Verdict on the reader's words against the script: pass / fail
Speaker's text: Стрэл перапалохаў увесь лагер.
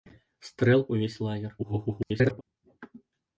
fail